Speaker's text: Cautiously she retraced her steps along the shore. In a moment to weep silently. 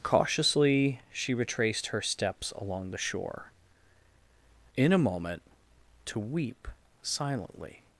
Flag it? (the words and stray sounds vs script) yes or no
no